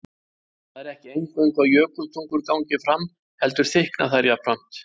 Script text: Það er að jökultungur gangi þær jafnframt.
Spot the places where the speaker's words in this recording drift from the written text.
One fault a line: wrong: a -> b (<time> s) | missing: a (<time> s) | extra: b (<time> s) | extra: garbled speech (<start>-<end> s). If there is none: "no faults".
extra: ekki eingöngu (0.9 s)
extra: fram heldur þykkna (2.9 s)